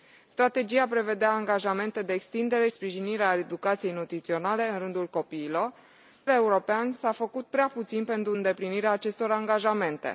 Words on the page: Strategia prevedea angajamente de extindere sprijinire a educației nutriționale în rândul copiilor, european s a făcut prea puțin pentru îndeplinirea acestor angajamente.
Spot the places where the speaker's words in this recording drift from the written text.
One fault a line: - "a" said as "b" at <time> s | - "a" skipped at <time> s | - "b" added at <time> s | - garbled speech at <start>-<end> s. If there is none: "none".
none